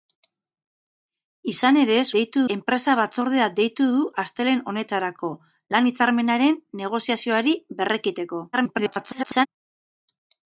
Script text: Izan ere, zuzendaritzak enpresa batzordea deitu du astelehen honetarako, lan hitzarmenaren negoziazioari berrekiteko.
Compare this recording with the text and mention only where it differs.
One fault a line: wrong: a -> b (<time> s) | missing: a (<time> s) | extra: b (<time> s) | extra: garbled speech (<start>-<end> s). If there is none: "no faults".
wrong: zuzendaritzak -> deitu (2.2 s)
extra: garbled speech (8.5-9.5 s)